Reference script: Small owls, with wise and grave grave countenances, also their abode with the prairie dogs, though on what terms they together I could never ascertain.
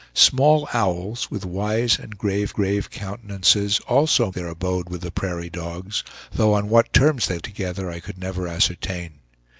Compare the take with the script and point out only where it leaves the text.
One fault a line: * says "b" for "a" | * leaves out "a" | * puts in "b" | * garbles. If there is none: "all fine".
all fine